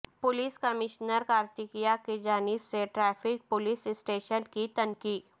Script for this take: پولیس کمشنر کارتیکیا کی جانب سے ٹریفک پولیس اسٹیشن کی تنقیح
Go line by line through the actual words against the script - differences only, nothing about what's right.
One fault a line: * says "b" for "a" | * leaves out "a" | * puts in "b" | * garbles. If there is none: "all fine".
all fine